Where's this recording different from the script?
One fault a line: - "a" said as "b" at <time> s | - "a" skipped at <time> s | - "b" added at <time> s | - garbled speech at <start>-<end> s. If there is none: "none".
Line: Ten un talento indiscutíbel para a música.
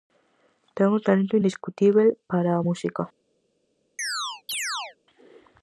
none